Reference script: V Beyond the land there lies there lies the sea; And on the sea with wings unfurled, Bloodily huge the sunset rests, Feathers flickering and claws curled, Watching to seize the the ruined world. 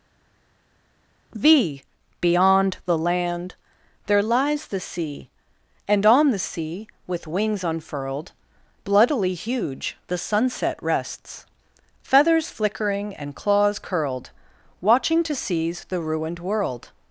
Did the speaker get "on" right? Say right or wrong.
right